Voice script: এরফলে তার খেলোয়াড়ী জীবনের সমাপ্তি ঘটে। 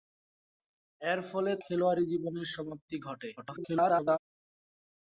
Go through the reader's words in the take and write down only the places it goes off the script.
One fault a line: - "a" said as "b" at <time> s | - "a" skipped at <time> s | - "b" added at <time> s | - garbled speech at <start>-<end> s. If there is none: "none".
- "তার" skipped at 1.5 s
- garbled speech at 3.4-4.2 s